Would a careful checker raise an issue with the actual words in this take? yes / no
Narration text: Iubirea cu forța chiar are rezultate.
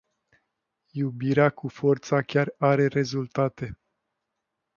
no